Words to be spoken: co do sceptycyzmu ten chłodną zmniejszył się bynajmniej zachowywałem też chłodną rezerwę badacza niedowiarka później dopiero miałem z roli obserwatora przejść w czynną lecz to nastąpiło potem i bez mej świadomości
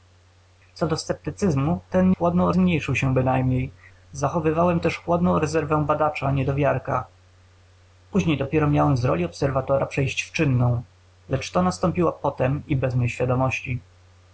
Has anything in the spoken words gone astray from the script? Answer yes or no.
no